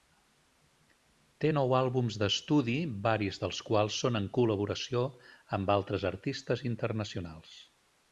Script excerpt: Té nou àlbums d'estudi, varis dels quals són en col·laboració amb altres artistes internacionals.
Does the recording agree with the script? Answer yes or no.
yes